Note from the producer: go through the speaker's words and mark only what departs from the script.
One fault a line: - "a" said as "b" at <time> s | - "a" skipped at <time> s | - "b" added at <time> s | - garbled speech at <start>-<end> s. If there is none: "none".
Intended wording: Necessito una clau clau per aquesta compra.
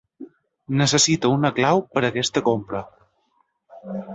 - "clau" skipped at 1.8 s